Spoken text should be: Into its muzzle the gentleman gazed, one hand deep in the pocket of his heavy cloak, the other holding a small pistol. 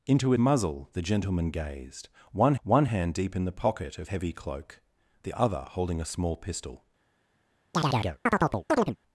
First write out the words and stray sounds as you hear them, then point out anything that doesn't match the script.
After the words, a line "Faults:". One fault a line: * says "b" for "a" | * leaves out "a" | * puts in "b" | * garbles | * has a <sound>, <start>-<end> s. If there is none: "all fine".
Into muzzle the gentleman gazed, one one hand deep in the pocket of heavy cloak, the other holding a small pistol.
Faults:
* leaves out "its"
* puts in "one"
* leaves out "his"
* has a chirp, 7.7-9.0 s